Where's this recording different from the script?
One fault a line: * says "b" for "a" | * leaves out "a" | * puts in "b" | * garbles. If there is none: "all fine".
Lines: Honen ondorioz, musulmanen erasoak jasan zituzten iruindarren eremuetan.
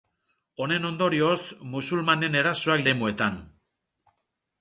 * leaves out "jasan zituzten iruindarren"